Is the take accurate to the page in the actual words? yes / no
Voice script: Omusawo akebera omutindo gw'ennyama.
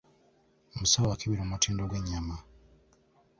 yes